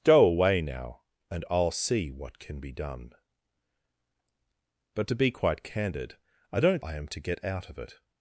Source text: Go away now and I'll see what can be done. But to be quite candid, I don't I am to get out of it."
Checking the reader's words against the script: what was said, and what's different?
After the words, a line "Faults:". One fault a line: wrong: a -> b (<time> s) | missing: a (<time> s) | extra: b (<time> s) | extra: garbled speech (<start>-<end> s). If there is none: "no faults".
Go away now and I'll see what can be done. But to be quite candid, I don't I am to get out of it."
Faults:
no faults